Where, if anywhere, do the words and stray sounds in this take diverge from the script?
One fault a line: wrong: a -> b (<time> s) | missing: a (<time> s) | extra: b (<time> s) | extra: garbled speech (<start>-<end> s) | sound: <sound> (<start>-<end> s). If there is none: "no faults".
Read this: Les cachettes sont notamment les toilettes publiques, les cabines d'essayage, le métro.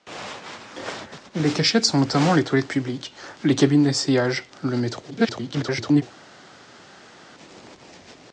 extra: garbled speech (5.1-6.0 s)